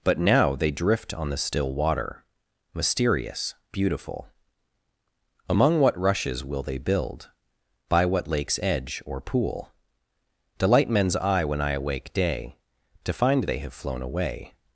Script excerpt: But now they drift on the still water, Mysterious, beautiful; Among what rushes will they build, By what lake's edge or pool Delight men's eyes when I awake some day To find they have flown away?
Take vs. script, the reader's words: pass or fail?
fail